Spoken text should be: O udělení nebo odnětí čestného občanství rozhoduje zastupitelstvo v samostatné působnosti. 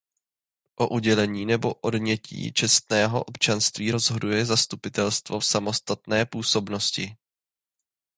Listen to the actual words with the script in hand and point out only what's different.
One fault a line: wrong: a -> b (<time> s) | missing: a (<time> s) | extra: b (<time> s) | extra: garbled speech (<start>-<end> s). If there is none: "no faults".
no faults